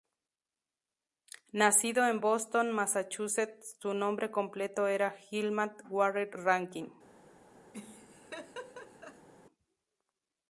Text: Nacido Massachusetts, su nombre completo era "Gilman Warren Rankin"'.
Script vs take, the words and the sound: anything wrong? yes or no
yes